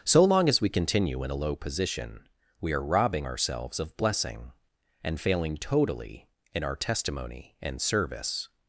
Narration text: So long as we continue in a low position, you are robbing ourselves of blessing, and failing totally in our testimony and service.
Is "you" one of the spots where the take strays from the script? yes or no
yes